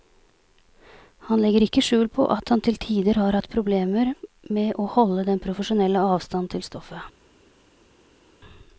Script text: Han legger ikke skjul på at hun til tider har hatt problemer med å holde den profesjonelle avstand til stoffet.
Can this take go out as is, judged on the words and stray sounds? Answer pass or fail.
fail